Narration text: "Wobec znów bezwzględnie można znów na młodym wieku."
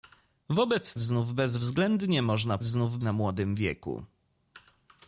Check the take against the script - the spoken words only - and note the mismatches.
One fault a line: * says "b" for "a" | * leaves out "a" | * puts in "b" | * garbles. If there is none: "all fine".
all fine